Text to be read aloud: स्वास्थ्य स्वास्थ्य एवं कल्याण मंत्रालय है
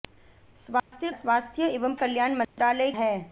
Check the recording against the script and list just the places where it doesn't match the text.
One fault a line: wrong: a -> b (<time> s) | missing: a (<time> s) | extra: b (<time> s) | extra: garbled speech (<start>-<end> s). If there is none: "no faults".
no faults